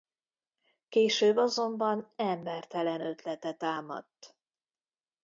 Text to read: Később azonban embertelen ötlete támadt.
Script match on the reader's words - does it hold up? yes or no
yes